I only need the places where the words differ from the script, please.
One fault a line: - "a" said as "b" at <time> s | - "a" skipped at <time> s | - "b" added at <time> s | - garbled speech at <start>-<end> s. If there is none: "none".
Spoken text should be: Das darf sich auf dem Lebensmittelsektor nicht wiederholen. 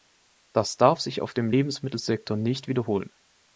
none